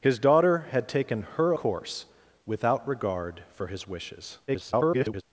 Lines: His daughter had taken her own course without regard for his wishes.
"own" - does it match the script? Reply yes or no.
no